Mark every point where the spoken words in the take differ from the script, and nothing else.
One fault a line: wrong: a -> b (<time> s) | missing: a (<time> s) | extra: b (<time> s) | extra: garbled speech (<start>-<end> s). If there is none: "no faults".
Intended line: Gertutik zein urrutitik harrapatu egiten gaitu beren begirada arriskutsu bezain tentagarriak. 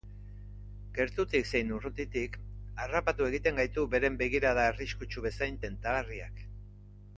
no faults